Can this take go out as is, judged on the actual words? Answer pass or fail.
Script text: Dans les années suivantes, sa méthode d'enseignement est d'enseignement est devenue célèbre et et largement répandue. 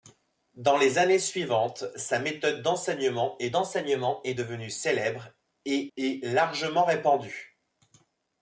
pass